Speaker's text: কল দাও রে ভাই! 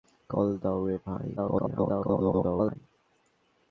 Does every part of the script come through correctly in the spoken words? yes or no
no